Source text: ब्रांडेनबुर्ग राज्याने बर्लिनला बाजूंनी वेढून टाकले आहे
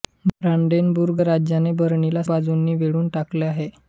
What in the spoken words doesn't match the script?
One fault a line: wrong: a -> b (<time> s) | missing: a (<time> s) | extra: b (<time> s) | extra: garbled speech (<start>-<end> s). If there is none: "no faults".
no faults